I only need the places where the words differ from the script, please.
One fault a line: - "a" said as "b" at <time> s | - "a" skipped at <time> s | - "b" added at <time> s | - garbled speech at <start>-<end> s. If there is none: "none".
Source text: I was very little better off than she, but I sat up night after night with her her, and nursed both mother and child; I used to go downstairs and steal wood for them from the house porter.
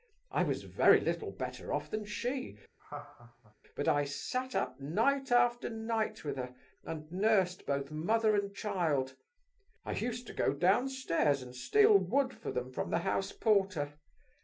- "her" skipped at 6.5 s